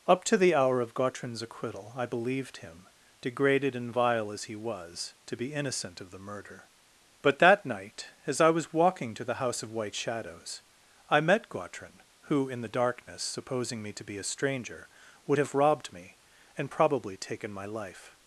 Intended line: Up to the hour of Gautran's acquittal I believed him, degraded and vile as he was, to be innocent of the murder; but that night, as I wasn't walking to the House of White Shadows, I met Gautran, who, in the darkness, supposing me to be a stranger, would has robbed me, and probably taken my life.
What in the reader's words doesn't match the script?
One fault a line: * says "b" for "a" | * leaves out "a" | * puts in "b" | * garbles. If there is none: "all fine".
* says "was" for "wasn't"
* says "have" for "has"